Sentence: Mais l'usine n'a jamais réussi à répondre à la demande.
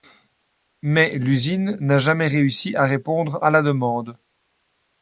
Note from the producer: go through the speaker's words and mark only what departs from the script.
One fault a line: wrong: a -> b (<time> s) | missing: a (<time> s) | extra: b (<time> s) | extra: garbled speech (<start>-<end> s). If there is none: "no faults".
no faults